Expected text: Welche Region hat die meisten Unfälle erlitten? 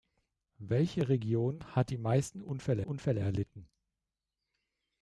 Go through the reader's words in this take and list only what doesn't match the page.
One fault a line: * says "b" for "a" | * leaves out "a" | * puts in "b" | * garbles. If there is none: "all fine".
* puts in "Unfälle"